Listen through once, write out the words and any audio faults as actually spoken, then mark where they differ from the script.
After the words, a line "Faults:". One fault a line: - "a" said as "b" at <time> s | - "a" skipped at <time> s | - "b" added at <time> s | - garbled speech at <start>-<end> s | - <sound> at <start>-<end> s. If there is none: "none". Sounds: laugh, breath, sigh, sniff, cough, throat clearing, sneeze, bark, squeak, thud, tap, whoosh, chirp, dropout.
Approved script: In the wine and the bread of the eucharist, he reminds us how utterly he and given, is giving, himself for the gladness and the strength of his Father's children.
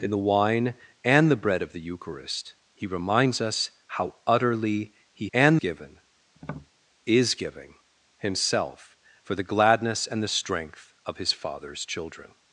In the wine and the bread of the eucharist, he reminds us how utterly he and given, is giving, himself for the gladness and the strength of his Father's children.
Faults:
- tap at 6.4-6.7 s